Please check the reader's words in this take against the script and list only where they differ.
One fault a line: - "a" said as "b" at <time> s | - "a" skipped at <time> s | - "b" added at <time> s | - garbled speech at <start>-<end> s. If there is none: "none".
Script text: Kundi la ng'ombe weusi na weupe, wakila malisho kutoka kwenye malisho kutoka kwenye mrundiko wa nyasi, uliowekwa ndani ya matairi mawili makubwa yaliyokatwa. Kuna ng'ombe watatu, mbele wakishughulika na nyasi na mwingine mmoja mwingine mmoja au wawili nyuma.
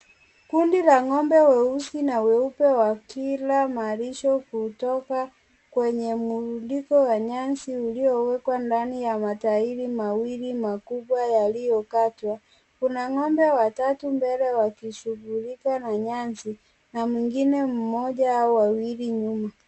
- "malisho kutoka kwenye" skipped at 6.2 s
- "mwingine mmoja" skipped at 18.4 s